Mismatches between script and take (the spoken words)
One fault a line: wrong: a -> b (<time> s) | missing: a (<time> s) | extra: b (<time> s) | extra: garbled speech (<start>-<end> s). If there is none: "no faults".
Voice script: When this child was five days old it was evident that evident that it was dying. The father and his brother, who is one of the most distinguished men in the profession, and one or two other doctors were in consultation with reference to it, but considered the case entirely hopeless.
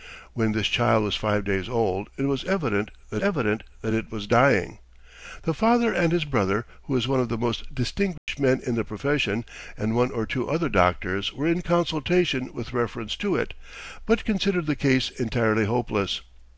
no faults